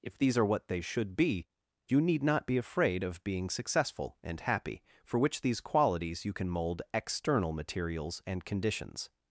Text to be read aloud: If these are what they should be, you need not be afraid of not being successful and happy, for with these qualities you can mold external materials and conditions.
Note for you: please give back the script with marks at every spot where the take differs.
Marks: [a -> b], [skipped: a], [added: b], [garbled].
If these are what they should be, you need not be afraid of [skipped: not] being successful and happy, for [with -> which] these qualities you can mold external materials and conditions.